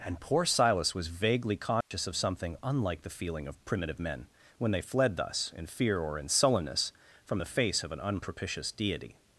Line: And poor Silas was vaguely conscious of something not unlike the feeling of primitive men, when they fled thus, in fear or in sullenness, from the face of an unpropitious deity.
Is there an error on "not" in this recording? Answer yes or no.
yes